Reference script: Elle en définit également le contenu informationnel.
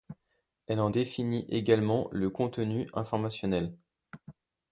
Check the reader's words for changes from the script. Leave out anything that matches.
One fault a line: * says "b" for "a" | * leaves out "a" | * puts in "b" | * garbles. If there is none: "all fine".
all fine